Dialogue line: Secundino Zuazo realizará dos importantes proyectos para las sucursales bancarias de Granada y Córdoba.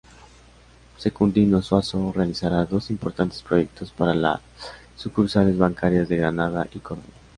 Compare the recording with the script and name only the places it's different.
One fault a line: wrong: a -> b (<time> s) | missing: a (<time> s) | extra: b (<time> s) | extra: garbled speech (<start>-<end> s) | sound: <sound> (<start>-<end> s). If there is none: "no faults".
no faults